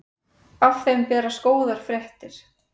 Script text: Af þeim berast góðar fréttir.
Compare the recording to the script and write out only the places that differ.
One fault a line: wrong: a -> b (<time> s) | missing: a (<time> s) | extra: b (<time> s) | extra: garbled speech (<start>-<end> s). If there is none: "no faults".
no faults